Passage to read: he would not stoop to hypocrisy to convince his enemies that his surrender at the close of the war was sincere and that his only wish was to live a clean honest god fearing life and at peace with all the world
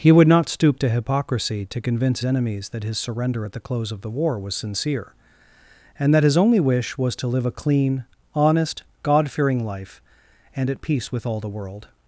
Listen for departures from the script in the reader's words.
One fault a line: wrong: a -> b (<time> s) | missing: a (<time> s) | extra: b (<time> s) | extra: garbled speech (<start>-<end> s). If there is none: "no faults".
missing: his (2.2 s)